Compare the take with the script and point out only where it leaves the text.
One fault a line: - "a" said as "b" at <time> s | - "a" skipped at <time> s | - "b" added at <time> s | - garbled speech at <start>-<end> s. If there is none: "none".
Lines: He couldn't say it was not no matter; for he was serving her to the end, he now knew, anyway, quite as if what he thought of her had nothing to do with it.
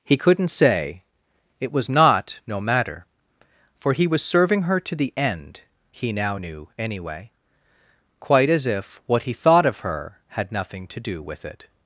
none